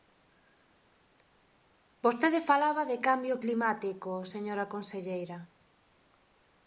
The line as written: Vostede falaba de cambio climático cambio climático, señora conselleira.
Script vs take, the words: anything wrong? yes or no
yes